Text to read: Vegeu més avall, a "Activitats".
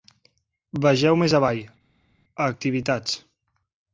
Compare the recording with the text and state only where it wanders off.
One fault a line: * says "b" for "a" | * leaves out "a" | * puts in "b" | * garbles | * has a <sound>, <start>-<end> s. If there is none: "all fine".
all fine